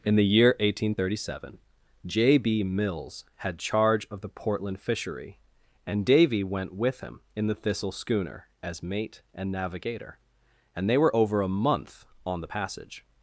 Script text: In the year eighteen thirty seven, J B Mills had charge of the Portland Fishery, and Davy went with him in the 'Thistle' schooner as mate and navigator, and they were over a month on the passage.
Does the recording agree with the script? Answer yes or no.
yes